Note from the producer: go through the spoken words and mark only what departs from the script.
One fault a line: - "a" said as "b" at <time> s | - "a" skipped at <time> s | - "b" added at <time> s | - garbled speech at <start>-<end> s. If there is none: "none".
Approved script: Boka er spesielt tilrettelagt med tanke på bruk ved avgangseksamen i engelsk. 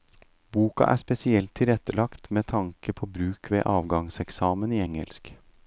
none